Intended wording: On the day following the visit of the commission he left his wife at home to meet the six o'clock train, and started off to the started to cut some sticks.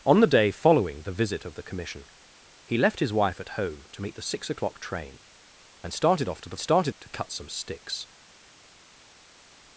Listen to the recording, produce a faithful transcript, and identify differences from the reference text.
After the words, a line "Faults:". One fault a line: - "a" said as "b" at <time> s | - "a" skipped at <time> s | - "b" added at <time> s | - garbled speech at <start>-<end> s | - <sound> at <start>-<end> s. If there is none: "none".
On the day following the visit of the commission he left his wife at home to meet the six o'clock train, and started off to the started to cut some sticks.
Faults:
none